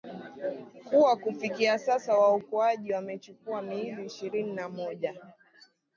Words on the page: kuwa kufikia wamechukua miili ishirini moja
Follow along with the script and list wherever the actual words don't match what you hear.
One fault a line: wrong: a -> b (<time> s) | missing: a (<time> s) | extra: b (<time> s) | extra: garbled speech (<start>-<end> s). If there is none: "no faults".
extra: sasa waokoaji (1.8 s)
extra: na (4.5 s)